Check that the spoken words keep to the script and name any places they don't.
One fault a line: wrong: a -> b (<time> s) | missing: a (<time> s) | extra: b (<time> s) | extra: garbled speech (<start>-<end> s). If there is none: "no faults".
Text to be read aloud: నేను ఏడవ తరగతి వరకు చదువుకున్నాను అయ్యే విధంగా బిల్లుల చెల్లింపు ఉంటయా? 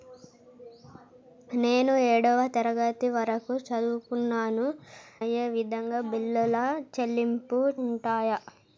no faults